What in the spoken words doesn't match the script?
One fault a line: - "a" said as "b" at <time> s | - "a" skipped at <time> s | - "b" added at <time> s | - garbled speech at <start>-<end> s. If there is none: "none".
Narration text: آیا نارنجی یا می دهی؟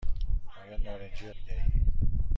none